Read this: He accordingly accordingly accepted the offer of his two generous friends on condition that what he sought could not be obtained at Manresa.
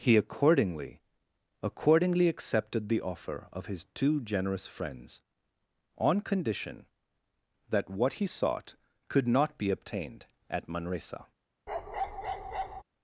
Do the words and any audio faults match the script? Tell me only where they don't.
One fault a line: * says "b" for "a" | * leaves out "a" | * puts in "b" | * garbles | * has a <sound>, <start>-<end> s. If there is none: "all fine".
* has a bark, 11.7-12.8 s